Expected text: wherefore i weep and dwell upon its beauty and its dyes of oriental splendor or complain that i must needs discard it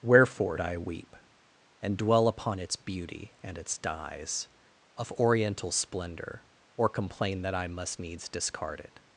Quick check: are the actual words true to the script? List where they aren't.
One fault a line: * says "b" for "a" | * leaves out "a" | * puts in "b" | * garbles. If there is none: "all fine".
all fine